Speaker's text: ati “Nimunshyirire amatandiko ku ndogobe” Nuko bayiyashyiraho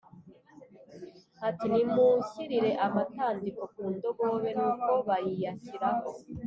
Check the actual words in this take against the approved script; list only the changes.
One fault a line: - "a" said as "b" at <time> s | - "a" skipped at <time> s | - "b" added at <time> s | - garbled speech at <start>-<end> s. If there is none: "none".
none